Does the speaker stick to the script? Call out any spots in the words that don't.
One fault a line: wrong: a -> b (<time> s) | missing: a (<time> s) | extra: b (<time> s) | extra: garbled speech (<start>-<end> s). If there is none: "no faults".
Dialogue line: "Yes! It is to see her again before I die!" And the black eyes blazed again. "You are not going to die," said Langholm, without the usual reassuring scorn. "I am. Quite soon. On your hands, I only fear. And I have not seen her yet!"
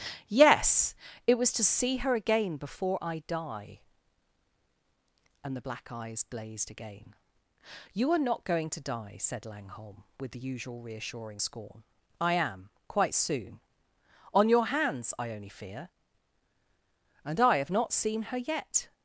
wrong: is -> was (1.4 s)
wrong: without -> with (10.2 s)